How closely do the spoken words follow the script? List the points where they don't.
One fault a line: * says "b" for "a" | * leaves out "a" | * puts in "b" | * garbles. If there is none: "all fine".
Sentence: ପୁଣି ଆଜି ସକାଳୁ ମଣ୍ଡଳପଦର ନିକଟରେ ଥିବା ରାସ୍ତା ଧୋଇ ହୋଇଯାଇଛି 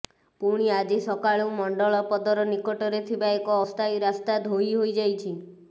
* puts in "ଏକ ଅସ୍ଥାୟୀ"